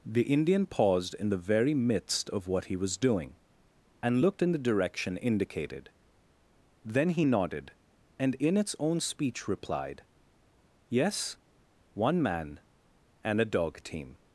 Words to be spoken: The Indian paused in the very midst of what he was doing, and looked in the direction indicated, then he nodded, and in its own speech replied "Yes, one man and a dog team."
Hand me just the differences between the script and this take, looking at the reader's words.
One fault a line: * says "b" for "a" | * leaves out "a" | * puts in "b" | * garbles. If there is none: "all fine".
all fine